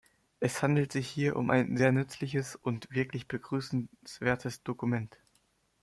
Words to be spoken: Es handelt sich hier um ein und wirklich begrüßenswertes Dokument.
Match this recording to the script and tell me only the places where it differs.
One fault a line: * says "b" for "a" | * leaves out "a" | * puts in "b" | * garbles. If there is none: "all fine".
* puts in "sehr nützliches"